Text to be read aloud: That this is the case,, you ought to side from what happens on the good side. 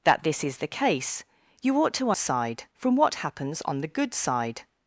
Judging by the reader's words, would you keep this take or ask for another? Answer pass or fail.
pass